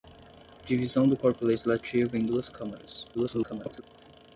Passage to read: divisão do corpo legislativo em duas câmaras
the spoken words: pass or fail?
fail